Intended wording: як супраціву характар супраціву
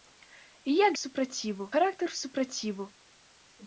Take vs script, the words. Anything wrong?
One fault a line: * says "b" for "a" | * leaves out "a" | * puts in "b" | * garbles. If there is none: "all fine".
all fine